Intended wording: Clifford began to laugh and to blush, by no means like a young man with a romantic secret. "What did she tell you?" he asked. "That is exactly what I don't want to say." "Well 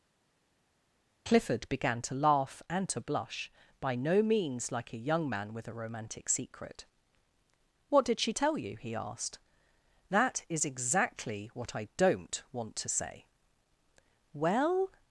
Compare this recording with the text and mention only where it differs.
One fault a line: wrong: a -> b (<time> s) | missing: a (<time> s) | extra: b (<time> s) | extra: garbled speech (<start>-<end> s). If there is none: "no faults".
no faults